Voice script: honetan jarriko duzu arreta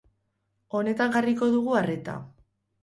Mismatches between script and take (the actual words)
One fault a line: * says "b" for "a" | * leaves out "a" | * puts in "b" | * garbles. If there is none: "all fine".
* says "dugu" for "duzu"